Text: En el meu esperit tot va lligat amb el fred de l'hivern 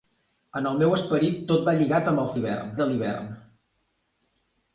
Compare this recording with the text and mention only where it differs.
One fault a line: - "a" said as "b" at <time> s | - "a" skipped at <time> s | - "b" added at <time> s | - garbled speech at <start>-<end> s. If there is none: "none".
- "fred" said as "l'hivern" at 2.4 s